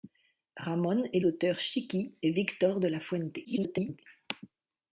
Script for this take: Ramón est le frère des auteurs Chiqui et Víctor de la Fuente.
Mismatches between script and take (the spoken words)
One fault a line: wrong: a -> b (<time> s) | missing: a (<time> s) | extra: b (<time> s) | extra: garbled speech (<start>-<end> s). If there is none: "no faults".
missing: le frère des (1.2 s)
extra: garbled speech (3.4-4.0 s)